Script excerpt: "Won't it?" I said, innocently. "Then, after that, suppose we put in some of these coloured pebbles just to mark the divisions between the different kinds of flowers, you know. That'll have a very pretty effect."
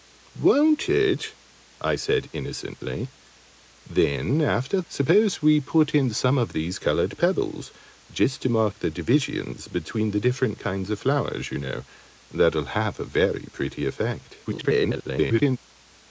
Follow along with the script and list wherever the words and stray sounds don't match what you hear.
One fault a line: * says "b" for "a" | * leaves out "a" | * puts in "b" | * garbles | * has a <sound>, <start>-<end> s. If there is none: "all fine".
* leaves out "that"
* garbles